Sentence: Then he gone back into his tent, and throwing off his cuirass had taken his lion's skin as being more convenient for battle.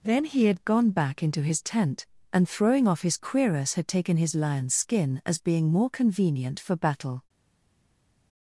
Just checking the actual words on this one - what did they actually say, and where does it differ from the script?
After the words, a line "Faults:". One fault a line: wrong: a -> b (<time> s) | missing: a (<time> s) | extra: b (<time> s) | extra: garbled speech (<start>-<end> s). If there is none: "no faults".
Then he had gone back into his tent, and throwing off his cuirass had taken his lion's skin as being more convenient for battle.
Faults:
extra: had (0.5 s)